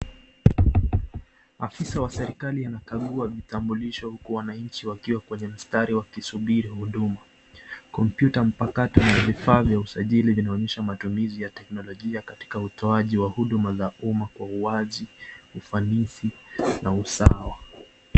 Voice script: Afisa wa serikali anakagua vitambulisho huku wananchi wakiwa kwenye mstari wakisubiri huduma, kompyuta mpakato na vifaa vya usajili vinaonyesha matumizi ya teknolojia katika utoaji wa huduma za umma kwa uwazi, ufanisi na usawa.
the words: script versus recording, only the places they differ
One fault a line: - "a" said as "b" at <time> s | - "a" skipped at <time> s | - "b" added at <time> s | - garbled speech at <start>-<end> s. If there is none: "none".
none